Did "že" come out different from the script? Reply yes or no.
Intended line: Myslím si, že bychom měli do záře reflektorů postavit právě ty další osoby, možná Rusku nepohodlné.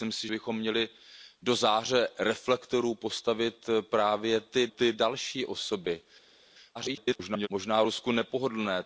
yes